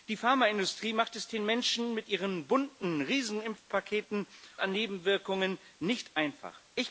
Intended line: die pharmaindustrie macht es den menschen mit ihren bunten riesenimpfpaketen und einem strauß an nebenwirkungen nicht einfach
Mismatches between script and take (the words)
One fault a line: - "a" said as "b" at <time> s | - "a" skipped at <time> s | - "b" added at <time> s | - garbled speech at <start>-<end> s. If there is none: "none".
- "und einem strauß" skipped at 4.2 s